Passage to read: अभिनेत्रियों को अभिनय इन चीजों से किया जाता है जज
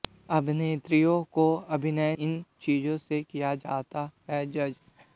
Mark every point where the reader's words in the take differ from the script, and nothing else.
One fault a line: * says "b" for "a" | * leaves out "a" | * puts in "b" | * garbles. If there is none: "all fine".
all fine